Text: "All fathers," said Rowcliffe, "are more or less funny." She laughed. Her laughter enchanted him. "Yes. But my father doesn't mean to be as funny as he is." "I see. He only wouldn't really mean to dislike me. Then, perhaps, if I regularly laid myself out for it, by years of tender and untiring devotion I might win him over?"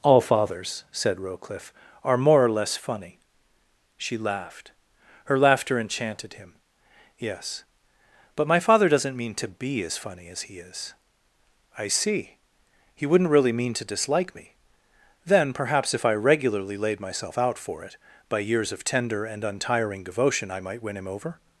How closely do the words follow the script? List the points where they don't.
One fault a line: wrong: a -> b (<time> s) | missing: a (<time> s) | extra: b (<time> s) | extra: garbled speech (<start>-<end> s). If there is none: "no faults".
missing: only (13.1 s)